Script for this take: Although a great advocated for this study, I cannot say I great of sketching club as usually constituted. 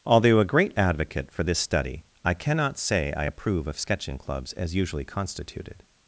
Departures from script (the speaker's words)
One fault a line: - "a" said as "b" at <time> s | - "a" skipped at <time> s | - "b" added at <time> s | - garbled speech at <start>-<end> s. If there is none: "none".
- "advocated" said as "advocate" at 0.8 s
- "great" said as "approve" at 3.2 s
- "club" said as "clubs" at 4.2 s